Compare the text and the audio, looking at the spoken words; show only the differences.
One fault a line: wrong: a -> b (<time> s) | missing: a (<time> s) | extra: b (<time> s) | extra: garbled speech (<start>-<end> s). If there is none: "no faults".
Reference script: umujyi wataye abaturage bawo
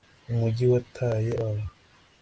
missing: abaturage (1.3 s)